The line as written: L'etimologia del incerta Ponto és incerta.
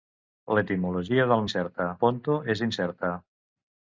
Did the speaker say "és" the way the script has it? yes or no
yes